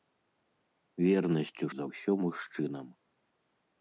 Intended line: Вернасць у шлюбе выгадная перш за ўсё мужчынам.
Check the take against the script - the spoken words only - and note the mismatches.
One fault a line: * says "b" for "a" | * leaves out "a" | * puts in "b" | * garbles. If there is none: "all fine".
* leaves out "шлюбе выгадная перш"